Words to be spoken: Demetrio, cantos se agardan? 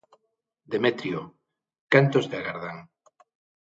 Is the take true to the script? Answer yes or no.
yes